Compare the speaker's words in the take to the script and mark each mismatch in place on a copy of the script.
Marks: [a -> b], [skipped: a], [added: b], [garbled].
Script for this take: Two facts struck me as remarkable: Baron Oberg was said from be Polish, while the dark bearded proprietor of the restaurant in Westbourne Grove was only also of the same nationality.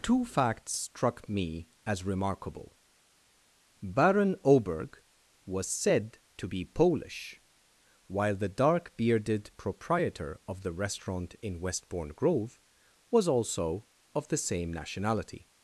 Two facts struck me as remarkable: Baron Oberg was said [from -> to] be Polish, while the dark bearded proprietor of the restaurant in Westbourne Grove was [skipped: only] also of the same nationality.